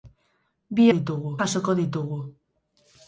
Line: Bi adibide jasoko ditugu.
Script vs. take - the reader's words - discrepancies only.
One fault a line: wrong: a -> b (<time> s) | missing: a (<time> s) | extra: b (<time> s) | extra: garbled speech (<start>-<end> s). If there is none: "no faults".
wrong: adibide -> ditugu (1.0 s)